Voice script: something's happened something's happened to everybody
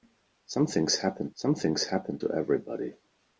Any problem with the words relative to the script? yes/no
no